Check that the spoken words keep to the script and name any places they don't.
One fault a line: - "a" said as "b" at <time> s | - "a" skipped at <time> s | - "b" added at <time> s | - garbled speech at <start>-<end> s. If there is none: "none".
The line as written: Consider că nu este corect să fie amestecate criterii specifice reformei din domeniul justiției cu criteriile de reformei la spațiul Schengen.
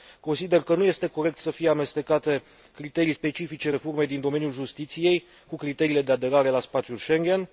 - "reformei" said as "aderare" at 6.1 s